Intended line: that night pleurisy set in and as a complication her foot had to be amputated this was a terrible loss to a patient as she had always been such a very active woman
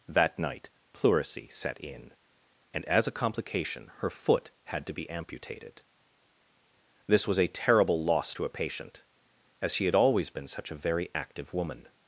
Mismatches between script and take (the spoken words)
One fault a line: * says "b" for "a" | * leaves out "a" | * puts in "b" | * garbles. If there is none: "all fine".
all fine